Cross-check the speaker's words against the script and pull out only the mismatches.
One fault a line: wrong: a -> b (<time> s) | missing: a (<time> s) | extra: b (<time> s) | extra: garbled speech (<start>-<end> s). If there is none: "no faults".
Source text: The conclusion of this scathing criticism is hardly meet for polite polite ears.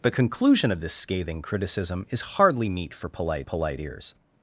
no faults